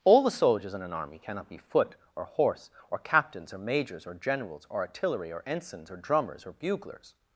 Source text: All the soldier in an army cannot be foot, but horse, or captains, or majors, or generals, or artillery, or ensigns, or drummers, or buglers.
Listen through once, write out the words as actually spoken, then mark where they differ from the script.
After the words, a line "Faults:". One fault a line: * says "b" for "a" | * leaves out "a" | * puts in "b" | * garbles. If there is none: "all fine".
All the soldiers in an army cannot be foot, or horse, or captains, or majors, or generals, or artillery, or ensigns, or drummers, or buglers.
Faults:
* says "soldiers" for "soldier"
* says "or" for "but"